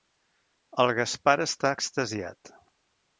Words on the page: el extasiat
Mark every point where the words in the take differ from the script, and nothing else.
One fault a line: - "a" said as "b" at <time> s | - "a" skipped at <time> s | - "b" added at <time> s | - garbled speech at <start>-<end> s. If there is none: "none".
- "gaspar està" added at 1.0 s